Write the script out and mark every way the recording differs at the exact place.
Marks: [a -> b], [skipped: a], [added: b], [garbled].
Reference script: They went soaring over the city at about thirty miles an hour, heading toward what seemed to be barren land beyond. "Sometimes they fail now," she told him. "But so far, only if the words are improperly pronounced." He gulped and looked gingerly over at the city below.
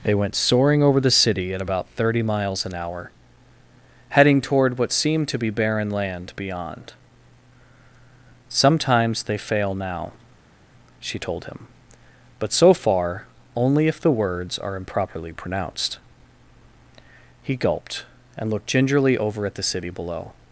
They went soaring over the city at about thirty miles an hour, heading toward what seemed to be barren land beyond. "Sometimes they fail now," she told him. "But so far, only if the words are improperly pronounced." He gulped and looked gingerly over at the city below.